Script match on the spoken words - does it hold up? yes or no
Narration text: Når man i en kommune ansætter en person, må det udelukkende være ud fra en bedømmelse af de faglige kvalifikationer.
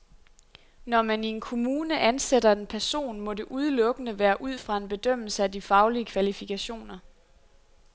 yes